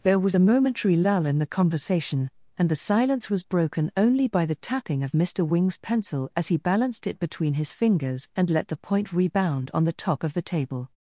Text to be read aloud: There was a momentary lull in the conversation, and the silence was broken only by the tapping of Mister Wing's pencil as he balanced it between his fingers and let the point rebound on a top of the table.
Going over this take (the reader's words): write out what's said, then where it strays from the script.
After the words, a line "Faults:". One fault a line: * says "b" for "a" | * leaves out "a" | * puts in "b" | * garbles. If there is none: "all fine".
There was a momentary lull in the conversation, and the silence was broken only by the tapping of Mister Wing's pencil as he balanced it between his fingers and let the point rebound on the top of the table.
Faults:
* says "the" for "a"